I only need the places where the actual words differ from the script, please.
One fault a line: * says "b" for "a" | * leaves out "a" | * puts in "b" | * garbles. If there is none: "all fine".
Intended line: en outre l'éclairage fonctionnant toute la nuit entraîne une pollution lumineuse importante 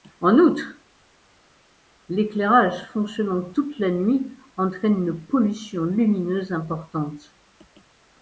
all fine